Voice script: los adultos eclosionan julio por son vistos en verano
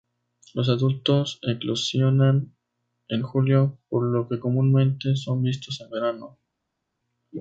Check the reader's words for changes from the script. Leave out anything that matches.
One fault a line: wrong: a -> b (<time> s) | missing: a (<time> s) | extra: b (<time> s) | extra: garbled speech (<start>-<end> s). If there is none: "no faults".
extra: en (3.1 s)
extra: lo que comúnmente (4.1 s)